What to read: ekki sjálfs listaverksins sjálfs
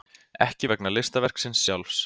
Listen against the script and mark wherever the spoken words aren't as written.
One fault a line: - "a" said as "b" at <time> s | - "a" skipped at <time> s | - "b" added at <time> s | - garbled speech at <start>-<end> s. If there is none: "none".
- "sjálfs" said as "vegna" at 0.7 s